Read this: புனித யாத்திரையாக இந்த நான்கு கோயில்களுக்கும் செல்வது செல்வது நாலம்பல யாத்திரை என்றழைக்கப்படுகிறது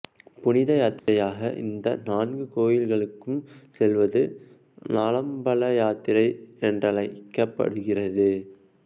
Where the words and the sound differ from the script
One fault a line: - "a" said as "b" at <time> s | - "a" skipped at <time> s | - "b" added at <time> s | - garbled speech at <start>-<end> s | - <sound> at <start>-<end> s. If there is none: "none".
- dropout at 1.0-1.1 s
- "செல்வது" skipped at 4.2 s